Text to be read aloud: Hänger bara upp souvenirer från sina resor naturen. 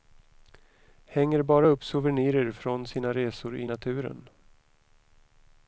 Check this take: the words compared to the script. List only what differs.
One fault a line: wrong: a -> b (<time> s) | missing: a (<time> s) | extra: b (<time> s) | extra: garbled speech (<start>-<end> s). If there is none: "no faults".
extra: i (3.6 s)